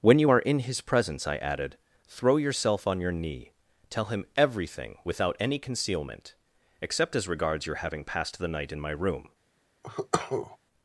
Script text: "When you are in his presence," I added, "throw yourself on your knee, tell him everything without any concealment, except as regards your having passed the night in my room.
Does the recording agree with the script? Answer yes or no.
yes